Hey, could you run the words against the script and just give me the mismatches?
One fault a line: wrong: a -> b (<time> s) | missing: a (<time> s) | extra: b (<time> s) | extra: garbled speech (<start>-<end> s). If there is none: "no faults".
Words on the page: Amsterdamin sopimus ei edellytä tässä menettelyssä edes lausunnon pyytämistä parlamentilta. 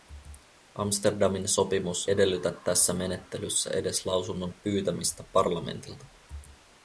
missing: ei (2.1 s)